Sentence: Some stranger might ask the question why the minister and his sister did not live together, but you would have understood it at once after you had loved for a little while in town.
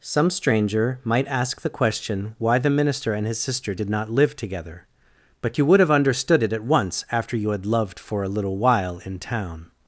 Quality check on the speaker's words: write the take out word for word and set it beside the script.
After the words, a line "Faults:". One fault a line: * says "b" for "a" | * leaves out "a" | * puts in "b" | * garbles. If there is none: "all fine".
Some stranger might ask the question why the minister and his sister did not live together, but you would have understood it at once after you had loved for a little while in town.
Faults:
all fine